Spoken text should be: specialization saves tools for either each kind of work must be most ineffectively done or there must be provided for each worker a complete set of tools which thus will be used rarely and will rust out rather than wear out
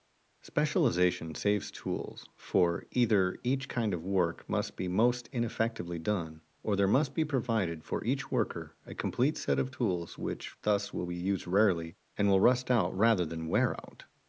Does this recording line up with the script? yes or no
yes